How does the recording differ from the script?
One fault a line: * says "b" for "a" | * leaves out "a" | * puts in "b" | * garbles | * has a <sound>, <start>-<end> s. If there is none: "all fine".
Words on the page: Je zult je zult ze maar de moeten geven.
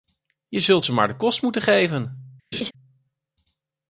* leaves out "je zult"
* puts in "kost"
* has a laugh, 2.5-2.7 s